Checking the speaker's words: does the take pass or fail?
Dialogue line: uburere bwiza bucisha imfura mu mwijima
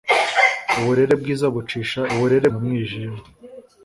fail